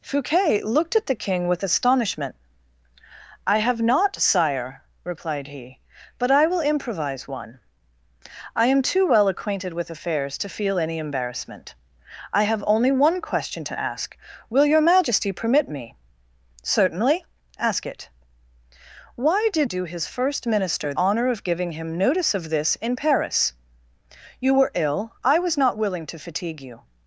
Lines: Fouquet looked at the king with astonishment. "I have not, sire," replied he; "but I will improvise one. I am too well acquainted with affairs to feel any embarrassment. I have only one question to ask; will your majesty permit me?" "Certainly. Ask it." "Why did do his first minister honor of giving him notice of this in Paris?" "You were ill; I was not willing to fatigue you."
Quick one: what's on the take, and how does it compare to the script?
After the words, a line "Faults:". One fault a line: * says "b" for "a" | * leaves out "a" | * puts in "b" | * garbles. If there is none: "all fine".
Fouquet looked at the king with astonishment. "I have not, sire," replied he; "but I will improvise one. I am too well acquainted with affairs to feel any embarrassment. I have only one question to ask; will your majesty permit me?" "Certainly. Ask it." "Why did do his first minister honor of giving him notice of this in Paris?" "You were ill; I was not willing to fatigue you."
Faults:
all fine